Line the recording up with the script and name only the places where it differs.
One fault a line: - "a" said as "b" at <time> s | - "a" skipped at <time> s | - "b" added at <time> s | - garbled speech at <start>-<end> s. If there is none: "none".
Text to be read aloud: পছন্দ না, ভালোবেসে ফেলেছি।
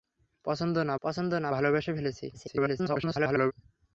- "পছন্দ না" added at 1.0 s
- garbled speech at 2.3-3.5 s